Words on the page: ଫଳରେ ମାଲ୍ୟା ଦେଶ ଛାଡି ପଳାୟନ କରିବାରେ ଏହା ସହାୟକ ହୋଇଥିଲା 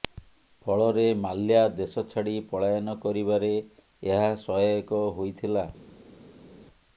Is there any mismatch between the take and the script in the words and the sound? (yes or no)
no